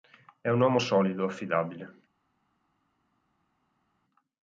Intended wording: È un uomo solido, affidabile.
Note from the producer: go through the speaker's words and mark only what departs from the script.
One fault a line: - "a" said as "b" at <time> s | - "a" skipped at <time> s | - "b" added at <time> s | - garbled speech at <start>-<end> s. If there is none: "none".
none